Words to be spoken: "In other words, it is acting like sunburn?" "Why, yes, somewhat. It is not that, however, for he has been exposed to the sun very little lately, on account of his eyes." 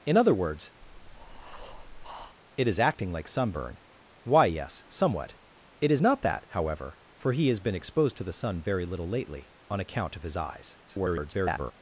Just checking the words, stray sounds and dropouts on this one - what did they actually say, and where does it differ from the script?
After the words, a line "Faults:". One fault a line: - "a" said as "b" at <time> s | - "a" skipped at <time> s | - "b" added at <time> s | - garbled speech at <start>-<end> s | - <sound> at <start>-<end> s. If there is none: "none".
"In other words, it is acting like sunburn?" "Why, yes, somewhat. It is not that, however, for he has been exposed to the sun very little lately, on account of his eyes." [garbled]
Faults:
- breath at 0.8-2.4 s
- garbled speech at 10.9-11.7 s